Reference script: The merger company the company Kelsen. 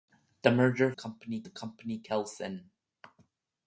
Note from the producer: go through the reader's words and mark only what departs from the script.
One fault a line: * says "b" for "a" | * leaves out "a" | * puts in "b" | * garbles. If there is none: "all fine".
all fine